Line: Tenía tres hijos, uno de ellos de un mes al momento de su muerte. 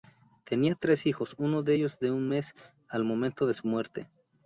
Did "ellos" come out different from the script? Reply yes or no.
no